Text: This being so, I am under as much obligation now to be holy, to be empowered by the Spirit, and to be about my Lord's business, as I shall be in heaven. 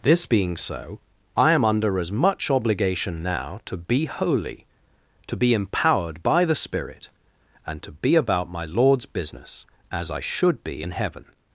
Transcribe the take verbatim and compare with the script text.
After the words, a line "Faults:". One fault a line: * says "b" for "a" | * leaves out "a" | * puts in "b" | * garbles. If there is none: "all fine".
This being so, I am under as much obligation now to be holy, to be empowered by the Spirit, and to be about my Lord's business, as I should be in heaven.
Faults:
* says "should" for "shall"